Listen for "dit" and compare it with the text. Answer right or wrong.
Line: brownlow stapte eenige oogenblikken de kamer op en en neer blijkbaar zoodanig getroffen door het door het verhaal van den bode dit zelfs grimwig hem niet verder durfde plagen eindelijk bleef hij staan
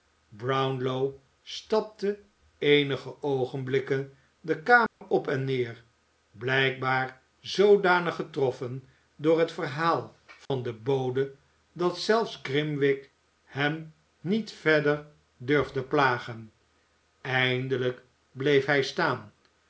wrong